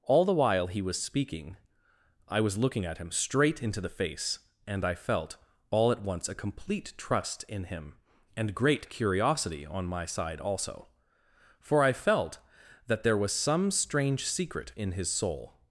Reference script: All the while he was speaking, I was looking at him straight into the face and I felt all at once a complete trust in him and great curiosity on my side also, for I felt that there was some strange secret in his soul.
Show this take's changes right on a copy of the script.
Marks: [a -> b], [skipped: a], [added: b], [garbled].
All the while he was speaking, I was looking at him straight into the face and I felt all at once a complete trust in him and great curiosity on my side also, for I felt that there was some strange secret in his soul.